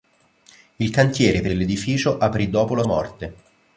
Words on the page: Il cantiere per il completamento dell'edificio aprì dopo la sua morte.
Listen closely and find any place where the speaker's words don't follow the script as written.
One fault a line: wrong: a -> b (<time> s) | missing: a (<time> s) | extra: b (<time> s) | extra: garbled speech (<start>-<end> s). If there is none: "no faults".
missing: il completamento (1.5 s)
missing: sua (2.8 s)